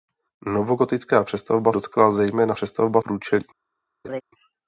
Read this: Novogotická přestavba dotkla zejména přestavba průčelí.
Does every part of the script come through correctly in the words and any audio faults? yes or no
no